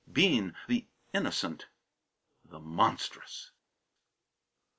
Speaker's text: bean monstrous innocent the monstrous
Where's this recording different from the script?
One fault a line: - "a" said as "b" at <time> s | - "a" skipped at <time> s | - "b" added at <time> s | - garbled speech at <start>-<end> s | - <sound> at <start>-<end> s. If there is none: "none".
- "monstrous" said as "the" at 0.7 s